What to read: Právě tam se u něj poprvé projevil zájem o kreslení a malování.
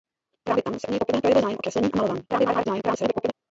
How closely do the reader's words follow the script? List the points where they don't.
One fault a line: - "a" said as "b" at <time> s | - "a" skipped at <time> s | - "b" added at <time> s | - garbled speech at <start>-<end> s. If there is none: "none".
- garbled speech at 2.3-3.3 s